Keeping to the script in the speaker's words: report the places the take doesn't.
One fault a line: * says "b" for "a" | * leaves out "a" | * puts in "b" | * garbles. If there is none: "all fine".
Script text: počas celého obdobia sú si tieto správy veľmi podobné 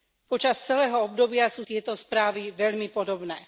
* leaves out "si"